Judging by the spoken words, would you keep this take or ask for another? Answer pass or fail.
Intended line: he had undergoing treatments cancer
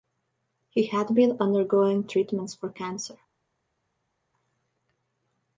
fail